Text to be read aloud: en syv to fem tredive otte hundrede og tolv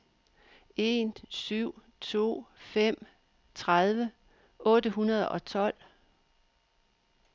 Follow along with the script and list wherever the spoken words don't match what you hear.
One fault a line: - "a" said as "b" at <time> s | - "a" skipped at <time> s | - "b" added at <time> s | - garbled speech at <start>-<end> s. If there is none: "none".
none